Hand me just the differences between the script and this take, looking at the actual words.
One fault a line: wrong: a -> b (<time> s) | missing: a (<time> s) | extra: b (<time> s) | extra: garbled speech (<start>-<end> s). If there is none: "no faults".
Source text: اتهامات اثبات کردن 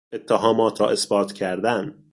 extra: را (0.8 s)